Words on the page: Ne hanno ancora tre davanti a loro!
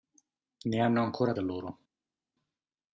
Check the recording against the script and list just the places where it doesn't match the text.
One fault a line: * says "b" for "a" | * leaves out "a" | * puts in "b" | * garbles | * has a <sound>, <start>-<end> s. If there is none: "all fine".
* leaves out "tre davanti"